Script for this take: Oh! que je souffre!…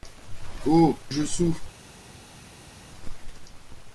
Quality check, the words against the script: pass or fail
fail